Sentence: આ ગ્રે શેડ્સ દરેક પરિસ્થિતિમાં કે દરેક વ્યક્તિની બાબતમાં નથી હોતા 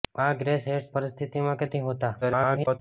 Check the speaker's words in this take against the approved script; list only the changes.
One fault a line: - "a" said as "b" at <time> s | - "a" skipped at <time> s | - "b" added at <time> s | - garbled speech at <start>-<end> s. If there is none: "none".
- "દરેક" skipped at 0.9 s
- "દરેક વ્યક્તિની બાબતમાં" skipped at 1.7 s
- garbled speech at 2.2-2.8 s